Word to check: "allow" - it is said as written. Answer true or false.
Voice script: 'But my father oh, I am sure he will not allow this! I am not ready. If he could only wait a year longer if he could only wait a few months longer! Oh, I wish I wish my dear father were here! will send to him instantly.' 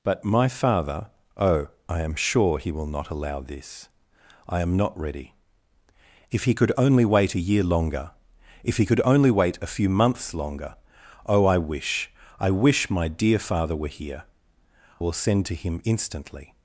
true